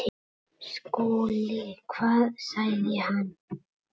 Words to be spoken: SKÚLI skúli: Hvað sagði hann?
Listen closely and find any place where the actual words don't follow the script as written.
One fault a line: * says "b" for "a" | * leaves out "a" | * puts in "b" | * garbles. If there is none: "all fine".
* leaves out "skúli"